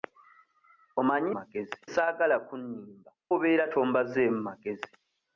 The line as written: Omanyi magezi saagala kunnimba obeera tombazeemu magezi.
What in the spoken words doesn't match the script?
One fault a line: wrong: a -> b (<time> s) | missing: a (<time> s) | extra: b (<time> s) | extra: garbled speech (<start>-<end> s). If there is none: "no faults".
no faults